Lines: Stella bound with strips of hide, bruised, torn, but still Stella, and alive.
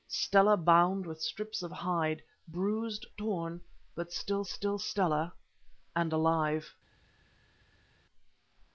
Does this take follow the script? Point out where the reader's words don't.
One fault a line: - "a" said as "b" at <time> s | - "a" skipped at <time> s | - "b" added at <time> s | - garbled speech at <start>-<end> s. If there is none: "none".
- "still" added at 4.5 s